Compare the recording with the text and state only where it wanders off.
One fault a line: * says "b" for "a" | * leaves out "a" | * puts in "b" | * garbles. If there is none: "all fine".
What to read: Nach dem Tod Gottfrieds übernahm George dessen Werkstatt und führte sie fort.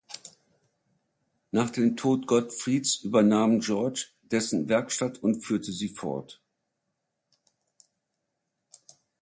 all fine